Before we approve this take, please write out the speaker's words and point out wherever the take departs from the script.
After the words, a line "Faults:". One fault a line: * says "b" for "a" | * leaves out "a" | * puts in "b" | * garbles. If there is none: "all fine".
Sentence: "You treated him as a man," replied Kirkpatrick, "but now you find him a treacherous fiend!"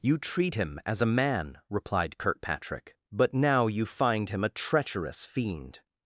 "You treat him as a man," replied Kirkpatrick, "but now you find him a treacherous fiend!"
Faults:
* says "treat" for "treated"